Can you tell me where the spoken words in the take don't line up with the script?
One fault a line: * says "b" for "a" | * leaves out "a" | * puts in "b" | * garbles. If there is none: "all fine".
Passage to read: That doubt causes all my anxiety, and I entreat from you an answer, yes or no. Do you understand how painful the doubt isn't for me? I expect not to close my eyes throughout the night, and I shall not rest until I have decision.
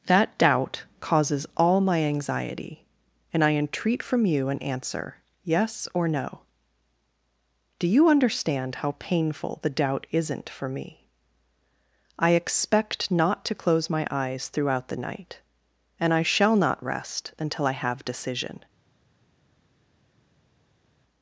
all fine